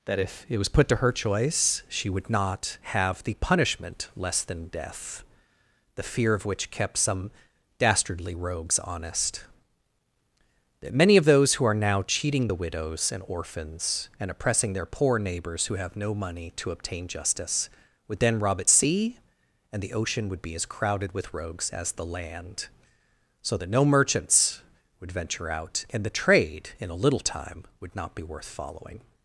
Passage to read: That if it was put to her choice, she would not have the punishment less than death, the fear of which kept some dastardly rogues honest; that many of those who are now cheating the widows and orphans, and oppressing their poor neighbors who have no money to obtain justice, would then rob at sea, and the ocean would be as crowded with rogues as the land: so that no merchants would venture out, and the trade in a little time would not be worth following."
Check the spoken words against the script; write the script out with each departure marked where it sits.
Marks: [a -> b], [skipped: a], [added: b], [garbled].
That if it was put to her choice, she would not have the punishment less than death, the fear of which kept some dastardly rogues honest; that many of those who are now cheating the widows and orphans, and oppressing their poor neighbors who have no money to obtain justice, would then rob at sea, and the ocean would be as crowded with rogues as the land: so that no merchants would venture out, and the trade in a little time would not be worth following."